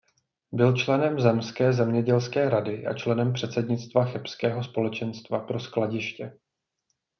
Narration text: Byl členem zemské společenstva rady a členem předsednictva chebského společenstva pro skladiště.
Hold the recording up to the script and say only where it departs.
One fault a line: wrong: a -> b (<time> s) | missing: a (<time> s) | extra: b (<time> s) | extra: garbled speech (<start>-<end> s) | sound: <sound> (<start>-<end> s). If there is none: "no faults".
wrong: společenstva -> zemědělské (1.7 s)